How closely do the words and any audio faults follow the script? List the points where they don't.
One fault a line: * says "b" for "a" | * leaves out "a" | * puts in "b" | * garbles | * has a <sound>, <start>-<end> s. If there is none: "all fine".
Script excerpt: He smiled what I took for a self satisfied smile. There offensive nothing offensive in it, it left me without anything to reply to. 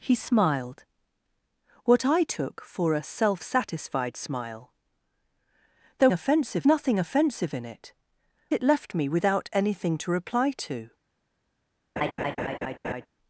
* has a laugh, 12.0-13.1 s